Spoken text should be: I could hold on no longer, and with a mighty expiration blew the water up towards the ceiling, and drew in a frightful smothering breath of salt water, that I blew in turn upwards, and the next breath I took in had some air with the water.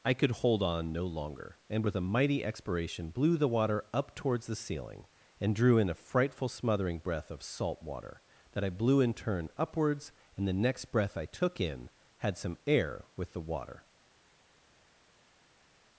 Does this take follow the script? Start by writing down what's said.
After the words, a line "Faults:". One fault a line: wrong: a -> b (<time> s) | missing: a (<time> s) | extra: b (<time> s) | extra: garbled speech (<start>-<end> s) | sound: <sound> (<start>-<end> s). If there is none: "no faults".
I could hold on no longer, and with a mighty expiration blew the water up towards the ceiling, and drew in a frightful smothering breath of salt water, that I blew in turn upwards, and the next breath I took in had some air with the water.
Faults:
no faults